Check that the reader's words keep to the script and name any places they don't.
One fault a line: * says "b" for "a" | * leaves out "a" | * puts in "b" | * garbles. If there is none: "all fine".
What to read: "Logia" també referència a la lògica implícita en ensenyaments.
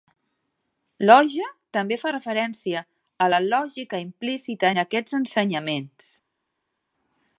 * puts in "fa"
* puts in "aquests"